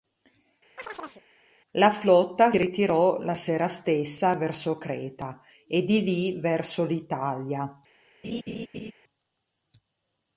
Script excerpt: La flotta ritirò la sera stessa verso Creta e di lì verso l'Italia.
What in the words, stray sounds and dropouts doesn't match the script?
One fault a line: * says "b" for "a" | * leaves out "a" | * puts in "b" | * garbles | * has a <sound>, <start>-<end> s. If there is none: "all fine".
* has a chirp, 0.8-1.2 s
* has a laugh, 8.2-8.9 s